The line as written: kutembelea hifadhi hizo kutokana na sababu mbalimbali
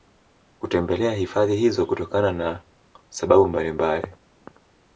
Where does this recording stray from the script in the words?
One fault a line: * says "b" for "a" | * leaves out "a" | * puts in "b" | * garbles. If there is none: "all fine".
all fine